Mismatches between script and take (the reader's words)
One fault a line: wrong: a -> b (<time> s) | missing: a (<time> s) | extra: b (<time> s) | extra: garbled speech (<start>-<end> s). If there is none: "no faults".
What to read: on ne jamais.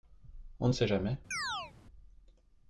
extra: sait (0.7 s)